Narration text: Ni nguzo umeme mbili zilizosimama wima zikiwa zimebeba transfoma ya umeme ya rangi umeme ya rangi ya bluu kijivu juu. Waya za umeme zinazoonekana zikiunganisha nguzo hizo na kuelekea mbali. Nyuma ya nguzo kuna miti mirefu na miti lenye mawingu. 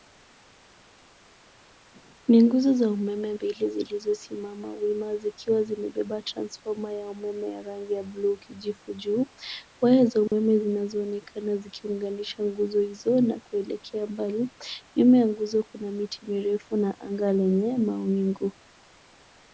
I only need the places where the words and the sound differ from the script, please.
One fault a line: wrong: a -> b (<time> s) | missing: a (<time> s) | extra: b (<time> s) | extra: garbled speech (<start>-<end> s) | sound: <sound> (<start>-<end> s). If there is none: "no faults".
extra: za (2.7 s)
missing: umeme (7.9 s)
missing: rangi ya (8.0 s)
sound: dropout (10.3-10.3 s)
wrong: miti -> anga (17.0 s)